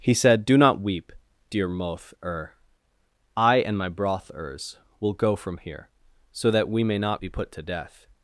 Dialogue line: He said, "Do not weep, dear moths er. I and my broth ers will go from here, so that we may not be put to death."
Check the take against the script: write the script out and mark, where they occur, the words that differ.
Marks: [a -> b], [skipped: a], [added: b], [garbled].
He said, "Do not weep, dear [moths -> moth] er. I and my broth ers will go from here, so that we may not be put to death."